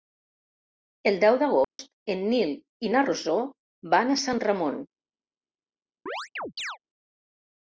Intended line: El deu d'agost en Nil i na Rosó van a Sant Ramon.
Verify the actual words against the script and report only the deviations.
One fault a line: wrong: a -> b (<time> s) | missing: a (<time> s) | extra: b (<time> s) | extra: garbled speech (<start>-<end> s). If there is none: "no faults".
no faults